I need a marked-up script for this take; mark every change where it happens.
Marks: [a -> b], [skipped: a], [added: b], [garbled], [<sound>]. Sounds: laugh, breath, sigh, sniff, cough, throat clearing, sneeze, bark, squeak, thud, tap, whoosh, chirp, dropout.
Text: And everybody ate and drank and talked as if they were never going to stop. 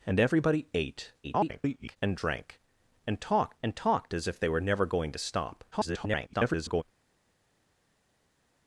And everybody ate [garbled] and drank and talked [added: and talked] as if they were never going to stop. [garbled]